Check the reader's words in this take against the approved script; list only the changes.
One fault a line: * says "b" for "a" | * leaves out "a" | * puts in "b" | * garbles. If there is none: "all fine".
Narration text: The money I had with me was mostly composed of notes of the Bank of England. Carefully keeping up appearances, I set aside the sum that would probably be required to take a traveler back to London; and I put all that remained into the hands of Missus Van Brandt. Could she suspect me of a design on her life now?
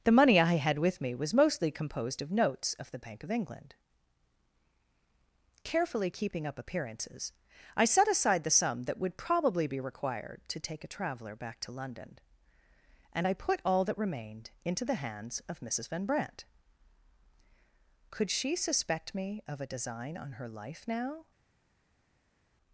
all fine